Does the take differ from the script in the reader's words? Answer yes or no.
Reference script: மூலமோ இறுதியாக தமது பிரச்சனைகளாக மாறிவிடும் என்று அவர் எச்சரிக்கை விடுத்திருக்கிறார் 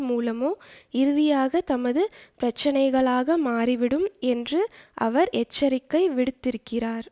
no